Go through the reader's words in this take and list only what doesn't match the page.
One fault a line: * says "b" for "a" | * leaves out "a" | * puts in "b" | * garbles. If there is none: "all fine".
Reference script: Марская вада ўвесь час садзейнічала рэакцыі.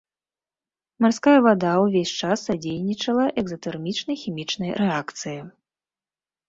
* puts in "экзатэрмічнай хімічнай"